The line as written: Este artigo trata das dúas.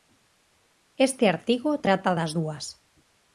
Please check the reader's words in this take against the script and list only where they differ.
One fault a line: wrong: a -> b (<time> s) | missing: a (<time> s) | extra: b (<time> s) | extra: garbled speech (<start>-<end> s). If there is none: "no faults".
no faults